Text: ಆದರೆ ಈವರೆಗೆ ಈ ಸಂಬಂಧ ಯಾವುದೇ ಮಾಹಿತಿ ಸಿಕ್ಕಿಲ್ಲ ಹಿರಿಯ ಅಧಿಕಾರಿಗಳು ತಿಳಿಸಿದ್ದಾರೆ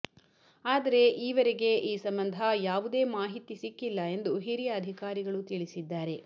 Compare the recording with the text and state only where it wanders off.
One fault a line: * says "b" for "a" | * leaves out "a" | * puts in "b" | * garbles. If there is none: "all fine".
* puts in "ಎಂದು"